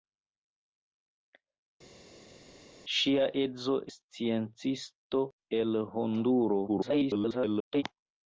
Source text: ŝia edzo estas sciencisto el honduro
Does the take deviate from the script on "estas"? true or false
true